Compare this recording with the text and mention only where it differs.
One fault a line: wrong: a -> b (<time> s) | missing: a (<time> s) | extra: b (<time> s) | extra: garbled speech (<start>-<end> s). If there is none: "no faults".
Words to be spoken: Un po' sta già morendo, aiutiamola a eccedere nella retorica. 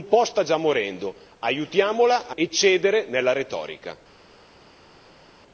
no faults